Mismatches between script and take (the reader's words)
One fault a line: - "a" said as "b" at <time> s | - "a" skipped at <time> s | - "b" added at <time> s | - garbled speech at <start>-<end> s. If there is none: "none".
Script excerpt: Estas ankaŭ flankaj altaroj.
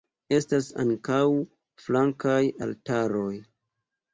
none